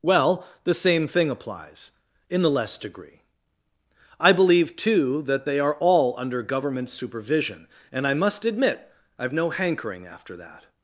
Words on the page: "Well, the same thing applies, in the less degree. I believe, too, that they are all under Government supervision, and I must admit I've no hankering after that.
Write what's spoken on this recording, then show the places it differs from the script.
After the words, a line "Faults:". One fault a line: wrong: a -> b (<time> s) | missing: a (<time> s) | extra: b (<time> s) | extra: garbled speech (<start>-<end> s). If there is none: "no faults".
"Well, the same thing applies, in the less degree. I believe, too, that they are all under Government supervision, and I must admit I've no hankering after that.
Faults:
no faults